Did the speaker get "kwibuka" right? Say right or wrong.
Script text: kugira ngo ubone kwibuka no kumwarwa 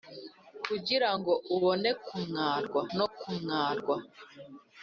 wrong